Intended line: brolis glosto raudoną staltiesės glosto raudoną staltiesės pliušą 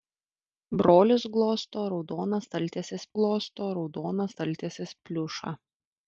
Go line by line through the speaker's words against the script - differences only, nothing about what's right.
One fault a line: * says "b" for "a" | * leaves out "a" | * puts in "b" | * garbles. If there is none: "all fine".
all fine